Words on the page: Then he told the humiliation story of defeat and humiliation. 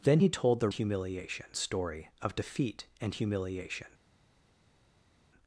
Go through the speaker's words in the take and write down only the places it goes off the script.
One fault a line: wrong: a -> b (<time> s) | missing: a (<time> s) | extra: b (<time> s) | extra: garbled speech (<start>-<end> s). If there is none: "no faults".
no faults